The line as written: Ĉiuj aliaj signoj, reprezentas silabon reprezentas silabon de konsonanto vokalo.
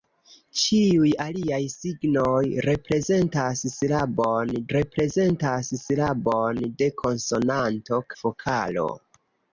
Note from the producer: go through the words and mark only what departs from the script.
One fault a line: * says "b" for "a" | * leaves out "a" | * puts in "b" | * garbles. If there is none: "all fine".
all fine